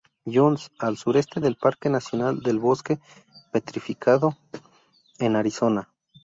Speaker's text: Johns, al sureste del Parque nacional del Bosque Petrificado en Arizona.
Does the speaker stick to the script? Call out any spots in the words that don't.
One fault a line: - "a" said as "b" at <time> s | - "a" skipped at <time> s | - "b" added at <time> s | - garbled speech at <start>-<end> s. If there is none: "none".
none